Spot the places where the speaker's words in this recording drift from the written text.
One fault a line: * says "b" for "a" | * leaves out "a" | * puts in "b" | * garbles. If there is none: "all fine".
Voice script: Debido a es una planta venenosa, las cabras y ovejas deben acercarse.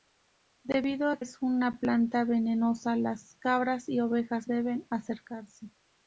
all fine